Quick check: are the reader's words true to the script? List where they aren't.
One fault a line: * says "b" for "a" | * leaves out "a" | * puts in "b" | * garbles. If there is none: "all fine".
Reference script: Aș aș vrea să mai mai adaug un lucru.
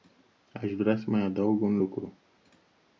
* leaves out "aș"
* leaves out "mai"